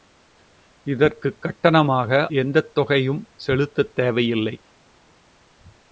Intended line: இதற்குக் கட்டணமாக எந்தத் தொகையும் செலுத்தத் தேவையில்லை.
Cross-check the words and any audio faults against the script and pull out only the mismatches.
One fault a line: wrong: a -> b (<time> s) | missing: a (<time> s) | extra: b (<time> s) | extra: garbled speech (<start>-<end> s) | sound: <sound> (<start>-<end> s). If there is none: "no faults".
no faults